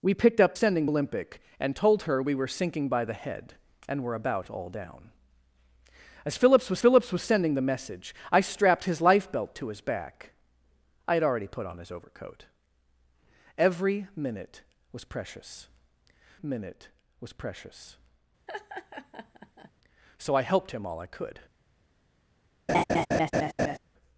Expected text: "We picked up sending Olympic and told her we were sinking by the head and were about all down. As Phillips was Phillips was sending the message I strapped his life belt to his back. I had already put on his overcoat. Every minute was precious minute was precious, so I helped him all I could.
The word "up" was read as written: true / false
true